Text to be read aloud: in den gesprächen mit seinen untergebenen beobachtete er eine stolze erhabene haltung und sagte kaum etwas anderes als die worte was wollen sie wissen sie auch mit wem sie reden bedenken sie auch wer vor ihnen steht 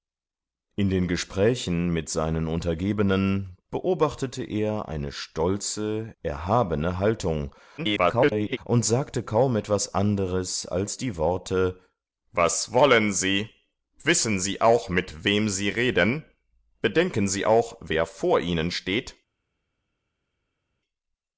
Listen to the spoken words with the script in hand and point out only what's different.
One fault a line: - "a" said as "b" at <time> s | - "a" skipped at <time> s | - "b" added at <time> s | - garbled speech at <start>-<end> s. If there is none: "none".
- garbled speech at 7.8-8.6 s